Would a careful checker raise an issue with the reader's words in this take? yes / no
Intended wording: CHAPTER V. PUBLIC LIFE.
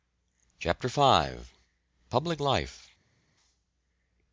no